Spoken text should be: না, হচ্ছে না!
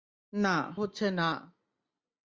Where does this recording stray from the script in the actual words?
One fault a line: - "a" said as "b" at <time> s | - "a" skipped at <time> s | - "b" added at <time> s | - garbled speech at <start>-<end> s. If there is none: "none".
none